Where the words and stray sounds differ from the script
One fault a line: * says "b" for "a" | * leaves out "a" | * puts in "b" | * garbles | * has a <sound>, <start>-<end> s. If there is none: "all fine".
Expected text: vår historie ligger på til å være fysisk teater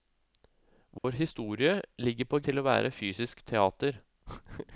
* has a dropout, 1.0-1.0 s